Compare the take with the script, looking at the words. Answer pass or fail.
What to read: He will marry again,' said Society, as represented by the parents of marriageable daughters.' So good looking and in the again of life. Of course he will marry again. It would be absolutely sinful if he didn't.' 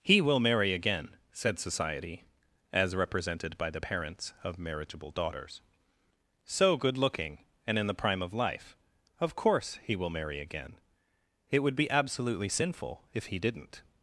fail